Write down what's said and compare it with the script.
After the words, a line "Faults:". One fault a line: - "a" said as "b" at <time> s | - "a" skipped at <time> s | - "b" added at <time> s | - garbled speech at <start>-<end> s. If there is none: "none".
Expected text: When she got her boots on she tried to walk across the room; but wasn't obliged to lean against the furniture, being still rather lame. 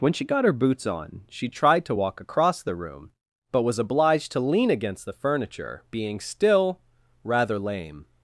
When she got her boots on she tried to walk across the room; but was obliged to lean against the furniture, being still rather lame.
Faults:
- "wasn't" said as "was" at 3.6 s